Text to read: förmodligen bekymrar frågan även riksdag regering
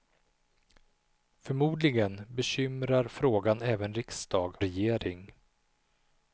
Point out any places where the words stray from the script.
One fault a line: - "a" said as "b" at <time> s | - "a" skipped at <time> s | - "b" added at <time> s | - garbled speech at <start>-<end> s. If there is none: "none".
none